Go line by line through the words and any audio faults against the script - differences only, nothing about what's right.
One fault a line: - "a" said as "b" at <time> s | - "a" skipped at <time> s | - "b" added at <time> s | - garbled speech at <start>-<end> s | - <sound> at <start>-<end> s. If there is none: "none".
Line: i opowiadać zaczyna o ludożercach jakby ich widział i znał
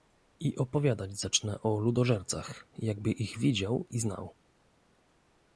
none